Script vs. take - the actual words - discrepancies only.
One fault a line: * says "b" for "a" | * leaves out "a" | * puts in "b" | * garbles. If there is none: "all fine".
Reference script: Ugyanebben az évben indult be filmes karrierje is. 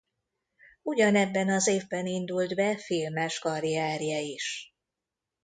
all fine